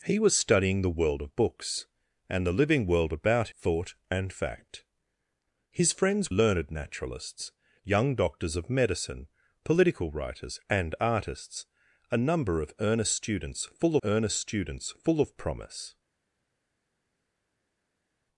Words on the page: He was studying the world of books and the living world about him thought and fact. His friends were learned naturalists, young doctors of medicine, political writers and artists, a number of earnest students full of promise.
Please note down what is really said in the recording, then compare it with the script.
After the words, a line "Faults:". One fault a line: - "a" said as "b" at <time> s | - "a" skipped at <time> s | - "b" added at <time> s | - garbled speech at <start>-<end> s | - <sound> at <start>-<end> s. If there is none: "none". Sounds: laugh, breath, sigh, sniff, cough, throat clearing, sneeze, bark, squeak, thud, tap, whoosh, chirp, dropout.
He was studying the world of books and the living world about thought and fact. His friends learned naturalists, young doctors of medicine, political writers and artists, a number of earnest students full earnest students full of promise.
Faults:
- "him" skipped at 3.5 s
- "were" skipped at 6.3 s
- "earnest students full" added at 14.0 s